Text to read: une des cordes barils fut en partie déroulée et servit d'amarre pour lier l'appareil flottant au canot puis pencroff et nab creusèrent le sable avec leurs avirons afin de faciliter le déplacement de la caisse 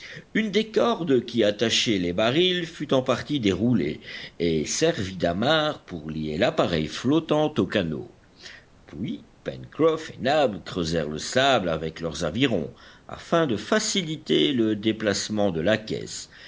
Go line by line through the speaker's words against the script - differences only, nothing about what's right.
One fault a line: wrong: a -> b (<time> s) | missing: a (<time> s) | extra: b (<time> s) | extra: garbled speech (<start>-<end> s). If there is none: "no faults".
extra: qui attachaient les (1.2 s)